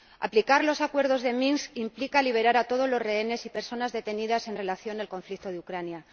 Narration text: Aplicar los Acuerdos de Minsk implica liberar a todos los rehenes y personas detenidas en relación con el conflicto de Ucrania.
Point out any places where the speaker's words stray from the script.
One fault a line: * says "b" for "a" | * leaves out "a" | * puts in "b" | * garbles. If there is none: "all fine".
all fine